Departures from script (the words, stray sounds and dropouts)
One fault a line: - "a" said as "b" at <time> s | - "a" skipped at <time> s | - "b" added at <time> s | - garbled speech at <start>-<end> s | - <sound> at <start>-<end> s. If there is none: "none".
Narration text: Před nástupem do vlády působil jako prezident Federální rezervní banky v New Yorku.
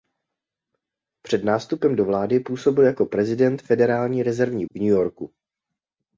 - "banky" skipped at 4.7 s